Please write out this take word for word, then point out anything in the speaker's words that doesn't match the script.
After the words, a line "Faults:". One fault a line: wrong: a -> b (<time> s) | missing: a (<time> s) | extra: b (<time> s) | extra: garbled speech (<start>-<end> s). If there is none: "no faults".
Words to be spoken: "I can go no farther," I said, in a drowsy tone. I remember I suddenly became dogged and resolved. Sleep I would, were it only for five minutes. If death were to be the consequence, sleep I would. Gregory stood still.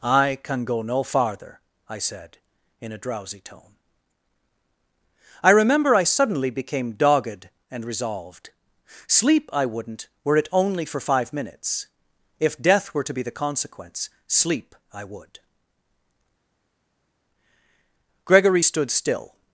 "I can go no farther," I said, in a drowsy tone. I remember I suddenly became dogged and resolved. Sleep I wouldn't, were it only for five minutes. If death were to be the consequence, sleep I would. Gregory stood still.
Faults:
wrong: would -> wouldn't (9.7 s)